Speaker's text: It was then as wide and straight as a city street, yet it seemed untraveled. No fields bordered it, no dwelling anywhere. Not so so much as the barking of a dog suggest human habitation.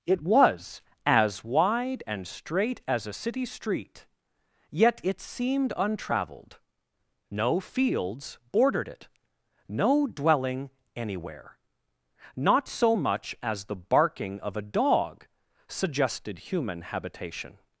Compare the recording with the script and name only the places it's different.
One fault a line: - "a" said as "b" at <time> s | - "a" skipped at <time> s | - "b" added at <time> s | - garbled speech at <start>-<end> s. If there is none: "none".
- "then" skipped at 0.8 s
- "so" skipped at 12.9 s
- "suggest" said as "suggested" at 15.7 s